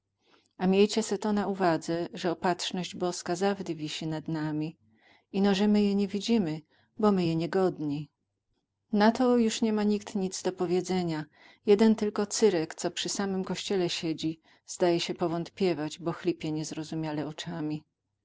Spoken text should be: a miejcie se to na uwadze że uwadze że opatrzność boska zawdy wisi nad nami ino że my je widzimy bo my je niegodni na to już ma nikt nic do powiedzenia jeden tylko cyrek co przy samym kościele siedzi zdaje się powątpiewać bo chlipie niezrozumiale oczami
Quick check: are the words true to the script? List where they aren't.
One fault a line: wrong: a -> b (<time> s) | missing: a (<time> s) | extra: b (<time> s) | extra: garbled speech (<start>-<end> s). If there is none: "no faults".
missing: uwadze że (2.3 s)
extra: nie (6.0 s)
extra: nie (9.6 s)